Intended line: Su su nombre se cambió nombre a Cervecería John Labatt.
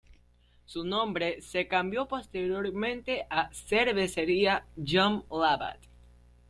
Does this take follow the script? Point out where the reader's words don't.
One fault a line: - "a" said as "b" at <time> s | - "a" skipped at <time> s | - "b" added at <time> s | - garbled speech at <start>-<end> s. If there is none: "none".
- "su" skipped at 0.8 s
- "nombre" said as "posteriormente" at 2.1 s